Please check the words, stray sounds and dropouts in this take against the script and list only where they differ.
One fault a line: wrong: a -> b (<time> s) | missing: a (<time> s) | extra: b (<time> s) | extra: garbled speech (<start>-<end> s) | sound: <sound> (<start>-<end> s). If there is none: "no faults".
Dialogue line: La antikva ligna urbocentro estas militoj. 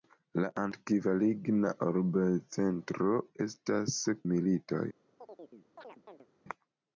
sound: chirp (5.2-6.3 s)